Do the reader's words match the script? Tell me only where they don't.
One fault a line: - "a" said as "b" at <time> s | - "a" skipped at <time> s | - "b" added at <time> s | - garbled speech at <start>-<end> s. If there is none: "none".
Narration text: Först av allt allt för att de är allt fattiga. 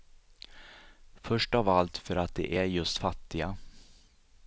- "allt" skipped at 2.0 s
- "allt" said as "just" at 2.6 s